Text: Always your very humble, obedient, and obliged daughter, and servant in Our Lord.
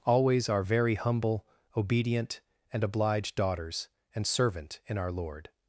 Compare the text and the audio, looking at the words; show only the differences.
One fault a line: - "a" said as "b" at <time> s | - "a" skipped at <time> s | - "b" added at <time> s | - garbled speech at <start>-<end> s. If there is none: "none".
- "your" said as "our" at 0.5 s
- "daughter" said as "daughters" at 3.4 s